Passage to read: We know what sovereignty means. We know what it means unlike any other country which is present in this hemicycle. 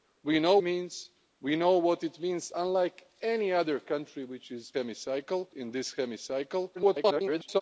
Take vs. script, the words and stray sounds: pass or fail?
fail